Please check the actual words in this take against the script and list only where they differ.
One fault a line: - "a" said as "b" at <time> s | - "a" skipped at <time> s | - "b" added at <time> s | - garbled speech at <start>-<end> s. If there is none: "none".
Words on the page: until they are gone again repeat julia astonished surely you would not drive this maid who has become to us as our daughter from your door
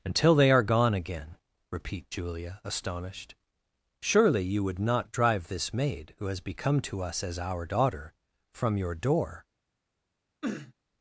none